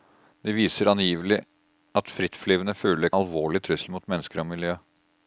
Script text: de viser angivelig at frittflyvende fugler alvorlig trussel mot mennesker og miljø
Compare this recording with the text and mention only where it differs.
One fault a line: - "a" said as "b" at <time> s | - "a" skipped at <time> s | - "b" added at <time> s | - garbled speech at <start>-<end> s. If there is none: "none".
none